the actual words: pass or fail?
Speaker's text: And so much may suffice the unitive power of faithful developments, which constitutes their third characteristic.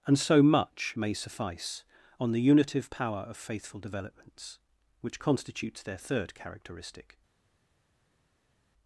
fail